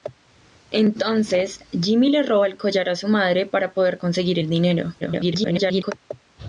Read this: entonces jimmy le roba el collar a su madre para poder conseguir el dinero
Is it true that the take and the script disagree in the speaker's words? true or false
true